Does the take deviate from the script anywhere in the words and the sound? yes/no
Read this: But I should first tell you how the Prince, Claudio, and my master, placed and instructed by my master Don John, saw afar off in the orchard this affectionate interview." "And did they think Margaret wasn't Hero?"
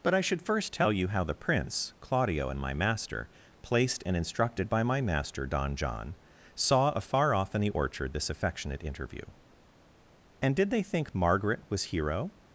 yes